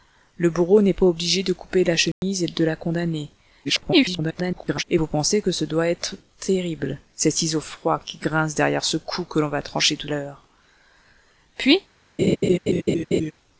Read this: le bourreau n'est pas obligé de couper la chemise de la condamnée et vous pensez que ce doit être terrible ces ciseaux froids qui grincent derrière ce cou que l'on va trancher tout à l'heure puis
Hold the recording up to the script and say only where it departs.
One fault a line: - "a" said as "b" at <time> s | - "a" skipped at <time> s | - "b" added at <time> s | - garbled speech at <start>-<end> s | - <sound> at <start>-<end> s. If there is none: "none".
- dropout at 2.1-2.2 s
- garbled speech at 3.6-4.8 s
- "à" skipped at 10.1 s
- laugh at 12.2-13.3 s